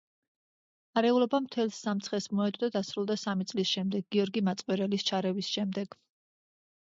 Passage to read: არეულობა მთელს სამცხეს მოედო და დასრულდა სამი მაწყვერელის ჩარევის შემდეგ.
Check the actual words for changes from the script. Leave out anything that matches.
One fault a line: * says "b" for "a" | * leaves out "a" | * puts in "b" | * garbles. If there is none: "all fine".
* puts in "წლის შემდეგ გიორგი"